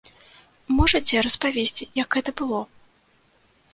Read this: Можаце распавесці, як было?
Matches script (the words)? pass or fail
fail